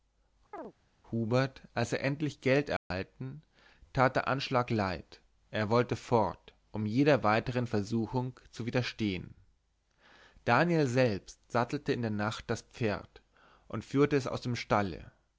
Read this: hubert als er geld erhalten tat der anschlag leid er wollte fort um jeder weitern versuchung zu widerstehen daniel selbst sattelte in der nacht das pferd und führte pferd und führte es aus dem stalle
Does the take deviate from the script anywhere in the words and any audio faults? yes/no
yes